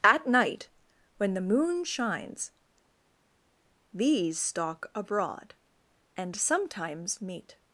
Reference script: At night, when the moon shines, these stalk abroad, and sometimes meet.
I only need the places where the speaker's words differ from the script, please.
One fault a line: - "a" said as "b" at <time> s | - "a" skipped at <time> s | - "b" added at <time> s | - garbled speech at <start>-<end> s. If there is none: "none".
none